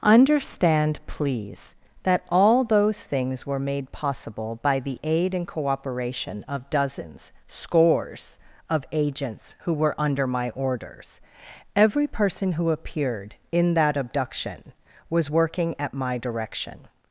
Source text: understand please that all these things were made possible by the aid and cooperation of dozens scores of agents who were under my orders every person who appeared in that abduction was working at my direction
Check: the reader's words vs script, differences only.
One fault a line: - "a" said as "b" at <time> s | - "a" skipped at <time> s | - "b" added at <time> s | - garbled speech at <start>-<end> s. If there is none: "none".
- "these" said as "those" at 2.6 s